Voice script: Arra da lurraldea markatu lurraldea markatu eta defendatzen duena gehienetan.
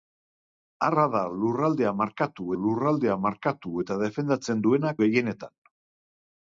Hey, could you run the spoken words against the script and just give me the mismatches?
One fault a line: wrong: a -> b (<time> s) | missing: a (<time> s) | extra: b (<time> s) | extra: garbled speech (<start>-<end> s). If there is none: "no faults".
no faults